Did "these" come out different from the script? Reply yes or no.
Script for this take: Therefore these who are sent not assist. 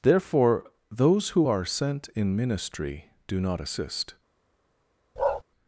yes